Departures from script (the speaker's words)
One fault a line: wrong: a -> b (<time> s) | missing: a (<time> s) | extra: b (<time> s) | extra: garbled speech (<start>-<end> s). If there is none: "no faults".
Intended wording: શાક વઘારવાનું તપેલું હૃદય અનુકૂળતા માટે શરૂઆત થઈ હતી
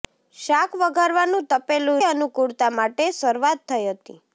missing: હૃદય (2.0 s)